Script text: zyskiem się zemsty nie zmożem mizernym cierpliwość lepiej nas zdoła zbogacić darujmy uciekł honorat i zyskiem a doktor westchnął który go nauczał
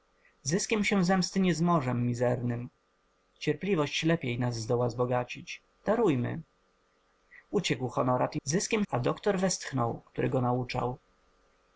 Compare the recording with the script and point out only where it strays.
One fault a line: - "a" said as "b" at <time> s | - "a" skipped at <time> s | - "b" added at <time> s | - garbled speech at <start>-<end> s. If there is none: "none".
none